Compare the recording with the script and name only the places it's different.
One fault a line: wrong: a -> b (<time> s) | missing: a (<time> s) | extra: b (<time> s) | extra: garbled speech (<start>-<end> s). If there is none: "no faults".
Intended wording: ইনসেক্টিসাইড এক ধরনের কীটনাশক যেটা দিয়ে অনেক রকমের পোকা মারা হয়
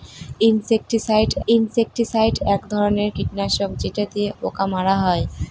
extra: ইনসেক্টিসাইড (1.5 s)
missing: অনেক রকমের (4.3 s)